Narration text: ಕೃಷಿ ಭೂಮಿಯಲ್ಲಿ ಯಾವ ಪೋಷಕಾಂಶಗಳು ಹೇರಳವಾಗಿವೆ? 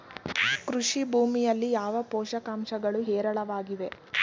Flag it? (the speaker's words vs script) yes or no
no